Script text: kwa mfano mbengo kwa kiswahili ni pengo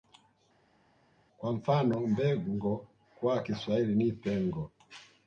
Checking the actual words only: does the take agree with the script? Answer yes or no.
yes